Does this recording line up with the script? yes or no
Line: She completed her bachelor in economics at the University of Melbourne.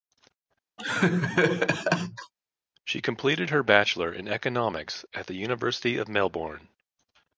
yes